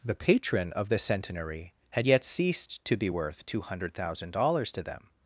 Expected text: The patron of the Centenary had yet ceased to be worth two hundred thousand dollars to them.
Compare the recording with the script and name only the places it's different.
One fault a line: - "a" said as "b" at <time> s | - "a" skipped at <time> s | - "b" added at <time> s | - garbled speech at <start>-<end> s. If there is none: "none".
none